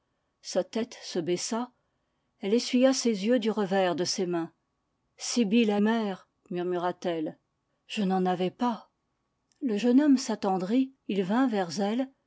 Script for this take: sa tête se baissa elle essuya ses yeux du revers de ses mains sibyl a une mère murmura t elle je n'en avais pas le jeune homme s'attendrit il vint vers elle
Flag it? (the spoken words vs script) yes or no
yes